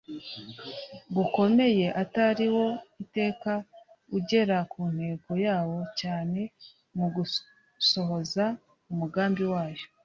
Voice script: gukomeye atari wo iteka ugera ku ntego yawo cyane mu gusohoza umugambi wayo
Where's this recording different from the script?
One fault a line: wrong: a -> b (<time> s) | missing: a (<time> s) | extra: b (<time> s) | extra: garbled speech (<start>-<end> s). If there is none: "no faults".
no faults